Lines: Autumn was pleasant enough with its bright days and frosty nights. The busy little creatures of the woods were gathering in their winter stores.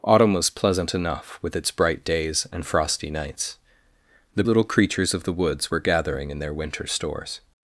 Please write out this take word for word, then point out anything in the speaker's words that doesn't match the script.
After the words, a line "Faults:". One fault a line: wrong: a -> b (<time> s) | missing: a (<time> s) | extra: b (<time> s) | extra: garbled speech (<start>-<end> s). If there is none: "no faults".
Autumn was pleasant enough with its bright days and frosty nights. The little creatures of the woods were gathering in their winter stores.
Faults:
missing: busy (4.4 s)